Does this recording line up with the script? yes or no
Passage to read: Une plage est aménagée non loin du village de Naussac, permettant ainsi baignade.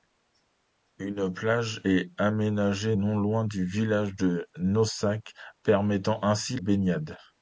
yes